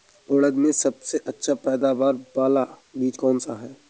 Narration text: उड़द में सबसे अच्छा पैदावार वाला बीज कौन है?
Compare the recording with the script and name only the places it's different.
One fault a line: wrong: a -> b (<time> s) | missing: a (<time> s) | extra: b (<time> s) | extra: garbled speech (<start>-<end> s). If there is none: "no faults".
extra: सा (3.4 s)